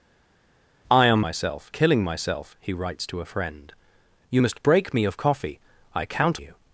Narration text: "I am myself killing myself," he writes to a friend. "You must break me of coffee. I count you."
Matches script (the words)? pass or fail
pass